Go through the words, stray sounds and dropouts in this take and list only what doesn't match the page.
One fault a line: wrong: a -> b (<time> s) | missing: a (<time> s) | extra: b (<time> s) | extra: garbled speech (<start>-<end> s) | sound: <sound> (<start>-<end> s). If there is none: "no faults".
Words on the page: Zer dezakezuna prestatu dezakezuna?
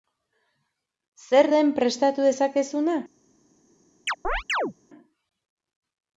wrong: dezakezuna -> den (1.5 s)
sound: chirp (4.1-4.7 s)